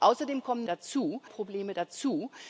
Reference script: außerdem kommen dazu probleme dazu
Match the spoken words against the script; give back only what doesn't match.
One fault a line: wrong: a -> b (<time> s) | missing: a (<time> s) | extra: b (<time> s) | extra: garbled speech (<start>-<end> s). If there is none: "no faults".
no faults